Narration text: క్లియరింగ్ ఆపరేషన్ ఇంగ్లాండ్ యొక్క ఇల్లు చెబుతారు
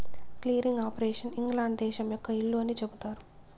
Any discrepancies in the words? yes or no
yes